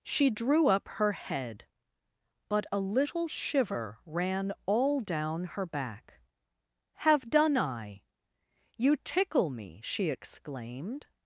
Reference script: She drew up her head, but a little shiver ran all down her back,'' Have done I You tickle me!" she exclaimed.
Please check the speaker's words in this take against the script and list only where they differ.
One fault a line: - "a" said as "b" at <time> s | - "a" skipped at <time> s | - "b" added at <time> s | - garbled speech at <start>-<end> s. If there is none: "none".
none